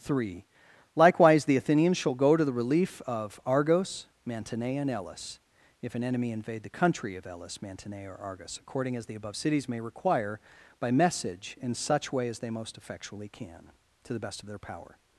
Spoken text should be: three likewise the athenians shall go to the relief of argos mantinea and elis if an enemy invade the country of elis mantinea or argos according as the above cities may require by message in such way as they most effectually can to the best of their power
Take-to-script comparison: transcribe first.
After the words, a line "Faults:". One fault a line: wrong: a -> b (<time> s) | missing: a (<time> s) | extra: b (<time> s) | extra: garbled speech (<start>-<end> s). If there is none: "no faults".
three likewise the athenians shall go to the relief of argos mantinea and elis if an enemy invade the country of elis mantinea or argos according as the above cities may require by message in such way as they most effectually can to the best of their power
Faults:
no faults